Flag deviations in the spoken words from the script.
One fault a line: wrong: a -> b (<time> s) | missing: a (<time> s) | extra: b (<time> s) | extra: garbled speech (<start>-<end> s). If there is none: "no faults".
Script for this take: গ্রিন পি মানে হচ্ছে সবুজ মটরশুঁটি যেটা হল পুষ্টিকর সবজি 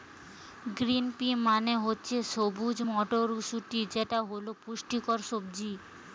no faults